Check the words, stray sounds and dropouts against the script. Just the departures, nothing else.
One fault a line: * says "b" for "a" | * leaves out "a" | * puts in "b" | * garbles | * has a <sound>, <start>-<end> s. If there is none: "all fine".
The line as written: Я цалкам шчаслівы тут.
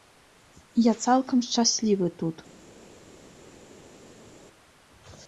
all fine